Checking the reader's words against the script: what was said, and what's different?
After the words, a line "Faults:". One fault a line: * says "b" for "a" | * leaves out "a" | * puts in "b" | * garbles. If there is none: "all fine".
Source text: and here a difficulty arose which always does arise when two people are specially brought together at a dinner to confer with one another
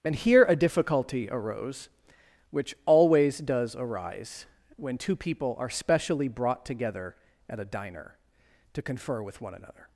and here a difficulty arose which always does arise when two people are specially brought together at a diner to confer with one another
Faults:
* says "diner" for "dinner"